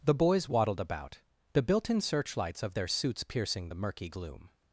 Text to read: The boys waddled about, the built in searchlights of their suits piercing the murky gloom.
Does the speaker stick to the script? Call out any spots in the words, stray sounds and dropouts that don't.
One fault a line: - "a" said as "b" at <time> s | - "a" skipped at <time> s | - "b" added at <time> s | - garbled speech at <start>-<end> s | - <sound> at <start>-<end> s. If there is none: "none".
none